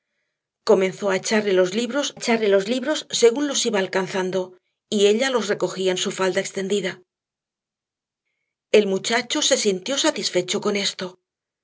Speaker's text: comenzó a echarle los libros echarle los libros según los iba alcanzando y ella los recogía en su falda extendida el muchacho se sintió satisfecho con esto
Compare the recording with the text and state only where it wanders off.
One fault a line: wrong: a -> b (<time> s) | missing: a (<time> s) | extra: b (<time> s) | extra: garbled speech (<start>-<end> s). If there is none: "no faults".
no faults